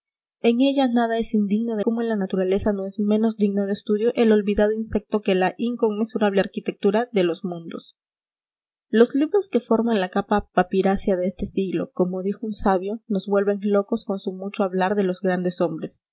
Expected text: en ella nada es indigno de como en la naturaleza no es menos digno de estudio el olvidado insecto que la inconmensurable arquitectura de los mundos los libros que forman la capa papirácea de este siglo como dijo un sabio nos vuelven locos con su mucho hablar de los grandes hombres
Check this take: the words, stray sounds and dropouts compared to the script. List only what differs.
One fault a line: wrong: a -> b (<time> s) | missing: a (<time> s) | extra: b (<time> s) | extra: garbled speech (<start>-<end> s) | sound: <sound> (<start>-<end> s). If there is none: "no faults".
no faults